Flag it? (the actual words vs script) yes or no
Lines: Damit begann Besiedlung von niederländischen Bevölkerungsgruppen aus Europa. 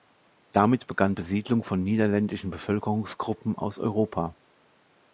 no